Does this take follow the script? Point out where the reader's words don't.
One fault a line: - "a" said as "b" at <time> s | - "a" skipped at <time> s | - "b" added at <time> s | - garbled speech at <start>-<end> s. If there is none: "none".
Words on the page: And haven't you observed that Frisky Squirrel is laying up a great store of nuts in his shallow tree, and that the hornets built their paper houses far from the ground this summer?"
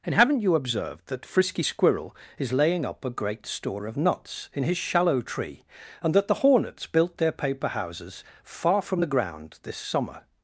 none